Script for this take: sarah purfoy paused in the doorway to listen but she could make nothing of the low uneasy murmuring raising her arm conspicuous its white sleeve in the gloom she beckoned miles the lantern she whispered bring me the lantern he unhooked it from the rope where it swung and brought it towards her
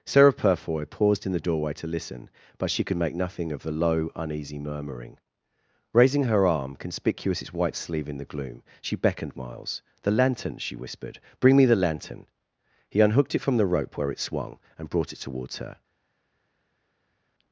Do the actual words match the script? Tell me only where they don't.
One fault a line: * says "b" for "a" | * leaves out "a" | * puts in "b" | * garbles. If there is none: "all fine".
all fine